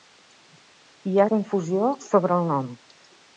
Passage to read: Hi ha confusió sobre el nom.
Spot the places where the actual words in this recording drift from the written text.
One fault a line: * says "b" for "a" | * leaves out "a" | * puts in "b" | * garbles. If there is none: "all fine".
all fine